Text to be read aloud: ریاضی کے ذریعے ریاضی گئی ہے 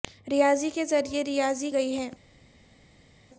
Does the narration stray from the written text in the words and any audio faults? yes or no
no